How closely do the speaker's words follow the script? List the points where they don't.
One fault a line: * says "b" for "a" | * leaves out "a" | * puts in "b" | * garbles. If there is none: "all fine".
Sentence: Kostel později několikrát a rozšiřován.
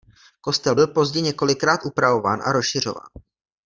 * puts in "byl"
* puts in "upravován"